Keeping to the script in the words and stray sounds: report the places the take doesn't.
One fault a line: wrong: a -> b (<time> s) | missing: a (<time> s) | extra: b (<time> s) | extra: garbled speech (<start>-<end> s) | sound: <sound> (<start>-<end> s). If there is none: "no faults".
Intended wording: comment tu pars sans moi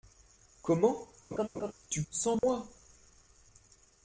sound: laugh (1.3-1.7 s)
missing: pars (2.0 s)
sound: dropout (2.4-2.4 s)